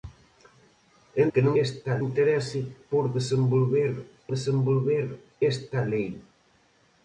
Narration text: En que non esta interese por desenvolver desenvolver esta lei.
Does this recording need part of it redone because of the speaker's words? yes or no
no